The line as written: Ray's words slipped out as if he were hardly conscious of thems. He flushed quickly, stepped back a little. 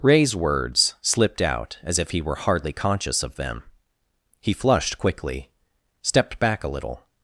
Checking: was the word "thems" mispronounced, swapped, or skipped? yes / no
yes